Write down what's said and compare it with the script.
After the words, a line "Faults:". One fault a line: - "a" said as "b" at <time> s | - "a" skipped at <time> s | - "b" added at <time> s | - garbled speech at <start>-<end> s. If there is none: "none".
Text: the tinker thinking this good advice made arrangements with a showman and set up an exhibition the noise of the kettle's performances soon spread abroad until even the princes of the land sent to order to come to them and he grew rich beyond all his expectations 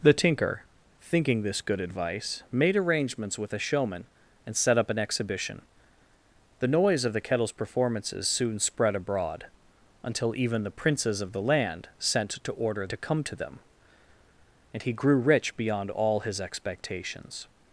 the tinker thinking this good advice made arrangements with a showman and set up an exhibition the noise of the kettle's performances soon spread abroad until even the princes of the land sent to order to come to them and he grew rich beyond all his expectations
Faults:
none